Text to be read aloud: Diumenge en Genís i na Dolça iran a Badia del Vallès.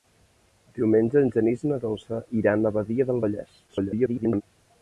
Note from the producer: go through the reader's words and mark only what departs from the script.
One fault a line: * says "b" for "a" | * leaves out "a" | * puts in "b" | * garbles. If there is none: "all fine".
* garbles